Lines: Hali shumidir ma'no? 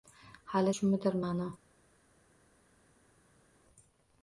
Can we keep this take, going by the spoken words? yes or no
yes